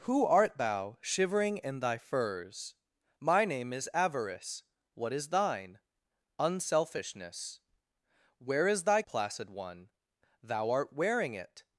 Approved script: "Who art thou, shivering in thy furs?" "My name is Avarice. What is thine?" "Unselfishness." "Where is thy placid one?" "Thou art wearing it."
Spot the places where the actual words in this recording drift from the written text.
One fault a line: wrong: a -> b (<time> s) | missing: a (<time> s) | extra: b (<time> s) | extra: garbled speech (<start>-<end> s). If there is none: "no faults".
no faults